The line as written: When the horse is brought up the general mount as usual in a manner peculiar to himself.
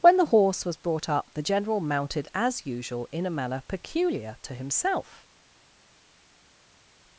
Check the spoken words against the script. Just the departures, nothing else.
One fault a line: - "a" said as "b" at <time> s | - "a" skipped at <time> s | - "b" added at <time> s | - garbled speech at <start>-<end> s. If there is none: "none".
- "is" said as "was" at 0.7 s
- "mount" said as "mounted" at 1.8 s